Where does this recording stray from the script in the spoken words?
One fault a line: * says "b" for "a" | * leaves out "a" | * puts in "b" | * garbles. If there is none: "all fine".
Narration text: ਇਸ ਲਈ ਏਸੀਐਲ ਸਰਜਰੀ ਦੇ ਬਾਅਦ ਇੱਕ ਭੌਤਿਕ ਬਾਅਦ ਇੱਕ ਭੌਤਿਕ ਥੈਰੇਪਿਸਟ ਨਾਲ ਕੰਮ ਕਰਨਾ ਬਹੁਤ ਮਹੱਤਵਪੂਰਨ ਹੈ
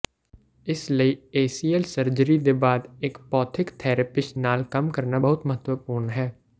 * leaves out "ਬਾਅਦ ਇੱਕ ਭੌਤਿਕ"